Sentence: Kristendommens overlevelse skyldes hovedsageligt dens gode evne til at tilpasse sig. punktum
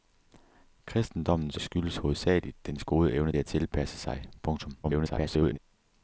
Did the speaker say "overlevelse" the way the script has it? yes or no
no